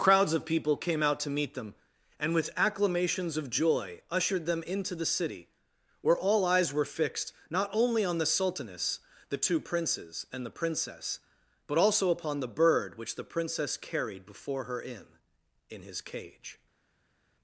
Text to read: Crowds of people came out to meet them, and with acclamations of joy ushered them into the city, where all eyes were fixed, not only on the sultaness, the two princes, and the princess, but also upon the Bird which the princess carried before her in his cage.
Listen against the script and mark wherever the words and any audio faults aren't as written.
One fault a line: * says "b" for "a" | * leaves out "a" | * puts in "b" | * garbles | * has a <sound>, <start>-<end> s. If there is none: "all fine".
* puts in "in"